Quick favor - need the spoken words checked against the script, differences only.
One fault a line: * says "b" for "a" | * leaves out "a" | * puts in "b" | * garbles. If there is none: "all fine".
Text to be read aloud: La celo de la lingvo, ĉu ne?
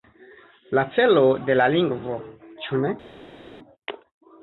all fine